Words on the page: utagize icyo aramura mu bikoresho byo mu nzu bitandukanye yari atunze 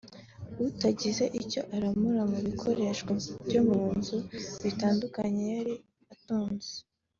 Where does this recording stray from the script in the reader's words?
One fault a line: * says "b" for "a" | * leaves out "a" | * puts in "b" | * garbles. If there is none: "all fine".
all fine